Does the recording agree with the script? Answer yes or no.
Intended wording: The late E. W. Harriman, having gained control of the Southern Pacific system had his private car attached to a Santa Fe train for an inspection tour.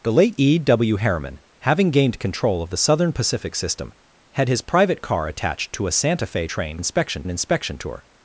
no